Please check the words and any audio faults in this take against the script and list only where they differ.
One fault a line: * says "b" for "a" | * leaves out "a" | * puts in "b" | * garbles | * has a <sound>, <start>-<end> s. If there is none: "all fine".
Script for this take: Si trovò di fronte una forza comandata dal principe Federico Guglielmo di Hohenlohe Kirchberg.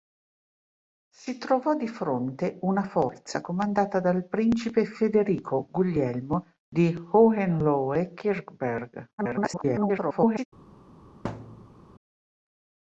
* garbles
* has a thud, 11.2-11.8 s